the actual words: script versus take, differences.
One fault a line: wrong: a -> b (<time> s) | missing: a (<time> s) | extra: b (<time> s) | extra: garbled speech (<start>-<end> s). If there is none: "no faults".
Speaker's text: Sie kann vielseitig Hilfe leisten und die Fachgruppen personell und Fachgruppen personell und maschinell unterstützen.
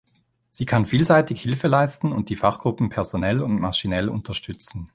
missing: Fachgruppen personell und (3.6 s)